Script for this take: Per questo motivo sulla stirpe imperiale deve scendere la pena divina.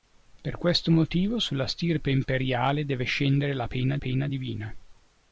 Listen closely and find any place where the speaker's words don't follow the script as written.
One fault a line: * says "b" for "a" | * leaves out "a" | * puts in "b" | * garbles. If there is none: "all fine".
* puts in "pena"